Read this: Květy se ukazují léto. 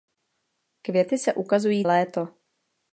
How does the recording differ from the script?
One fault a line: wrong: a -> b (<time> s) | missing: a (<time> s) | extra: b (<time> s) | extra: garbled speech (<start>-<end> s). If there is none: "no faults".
no faults